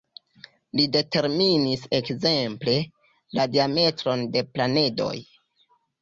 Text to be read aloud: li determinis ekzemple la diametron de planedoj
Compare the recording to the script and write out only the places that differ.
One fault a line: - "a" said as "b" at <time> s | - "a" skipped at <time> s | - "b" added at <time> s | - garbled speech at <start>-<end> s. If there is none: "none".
none